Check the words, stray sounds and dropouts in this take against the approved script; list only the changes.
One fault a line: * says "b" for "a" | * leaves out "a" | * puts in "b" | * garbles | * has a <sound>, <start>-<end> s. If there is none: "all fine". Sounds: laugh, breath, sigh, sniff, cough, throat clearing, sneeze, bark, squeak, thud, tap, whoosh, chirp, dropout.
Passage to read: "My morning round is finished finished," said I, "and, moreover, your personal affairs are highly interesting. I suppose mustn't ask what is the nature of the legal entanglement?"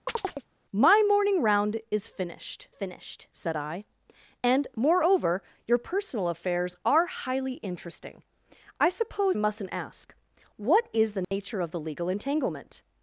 * has a chirp, 0.1-0.5 s
* has a dropout, 11.2-11.3 s